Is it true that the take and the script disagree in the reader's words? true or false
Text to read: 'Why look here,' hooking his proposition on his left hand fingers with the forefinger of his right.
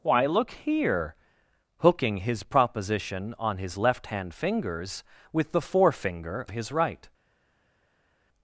true